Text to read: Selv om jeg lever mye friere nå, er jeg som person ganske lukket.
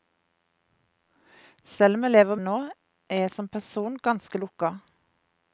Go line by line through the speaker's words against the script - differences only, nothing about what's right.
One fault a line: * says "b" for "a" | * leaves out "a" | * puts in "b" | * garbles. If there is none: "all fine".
* leaves out "mye friere"